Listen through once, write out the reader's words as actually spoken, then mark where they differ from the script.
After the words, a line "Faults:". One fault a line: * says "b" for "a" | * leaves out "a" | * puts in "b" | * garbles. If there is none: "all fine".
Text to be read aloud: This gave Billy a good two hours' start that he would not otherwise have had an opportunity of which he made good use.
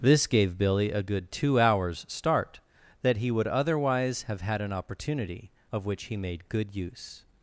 This gave Billy a good two hours' start that he would otherwise have had an opportunity of which he made good use.
Faults:
* leaves out "not"